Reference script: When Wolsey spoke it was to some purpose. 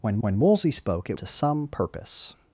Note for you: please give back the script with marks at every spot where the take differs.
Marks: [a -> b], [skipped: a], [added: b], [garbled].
When [added: when] Wolsey spoke it [skipped: was] to some purpose.